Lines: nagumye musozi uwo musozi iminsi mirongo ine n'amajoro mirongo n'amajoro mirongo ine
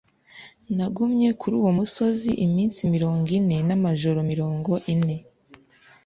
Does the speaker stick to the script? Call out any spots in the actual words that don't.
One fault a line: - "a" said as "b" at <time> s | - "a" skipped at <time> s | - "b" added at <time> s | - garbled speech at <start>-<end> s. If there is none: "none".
- "musozi" said as "kuri" at 1.4 s
- "n'amajoro mirongo" skipped at 4.7 s